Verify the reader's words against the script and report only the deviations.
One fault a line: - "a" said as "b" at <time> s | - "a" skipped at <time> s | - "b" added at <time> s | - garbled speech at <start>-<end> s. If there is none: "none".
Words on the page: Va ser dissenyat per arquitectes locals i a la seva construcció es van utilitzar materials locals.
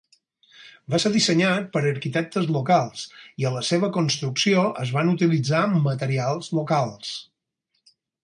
none